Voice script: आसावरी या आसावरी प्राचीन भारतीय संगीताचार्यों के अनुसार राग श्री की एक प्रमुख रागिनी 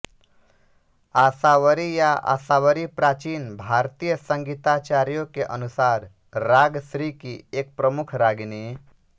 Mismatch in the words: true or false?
false